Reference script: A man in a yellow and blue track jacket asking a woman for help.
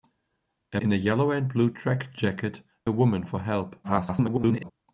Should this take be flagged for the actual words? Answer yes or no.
yes